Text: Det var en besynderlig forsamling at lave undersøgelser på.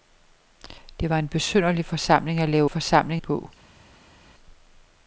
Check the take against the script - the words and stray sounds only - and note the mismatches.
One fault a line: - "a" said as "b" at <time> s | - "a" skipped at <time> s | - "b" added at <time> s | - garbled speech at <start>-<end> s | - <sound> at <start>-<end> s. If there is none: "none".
- "undersøgelser" said as "forsamling" at 2.7 s